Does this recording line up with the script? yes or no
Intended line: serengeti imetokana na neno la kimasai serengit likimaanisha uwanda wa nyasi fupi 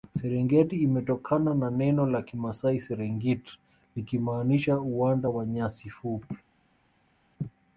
yes